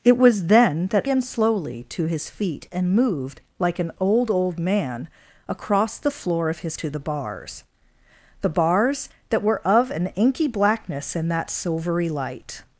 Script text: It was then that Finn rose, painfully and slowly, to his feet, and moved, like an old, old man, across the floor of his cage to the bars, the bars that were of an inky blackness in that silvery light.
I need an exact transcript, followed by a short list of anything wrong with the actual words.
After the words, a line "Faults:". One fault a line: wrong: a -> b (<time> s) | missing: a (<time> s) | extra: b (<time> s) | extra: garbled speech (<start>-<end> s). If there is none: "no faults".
It was then that And slowly, to his feet, and moved, like an old, old man, across the floor of his to the bars, the bars that were of an inky blackness in that silvery light.
Faults:
missing: Finn rose painfully (1.1 s)
missing: cage (6.8 s)